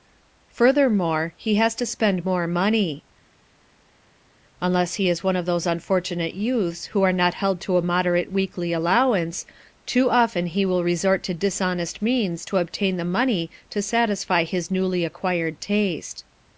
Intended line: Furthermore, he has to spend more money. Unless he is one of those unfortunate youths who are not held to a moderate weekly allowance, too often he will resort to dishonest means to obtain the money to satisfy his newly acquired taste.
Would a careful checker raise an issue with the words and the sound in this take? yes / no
no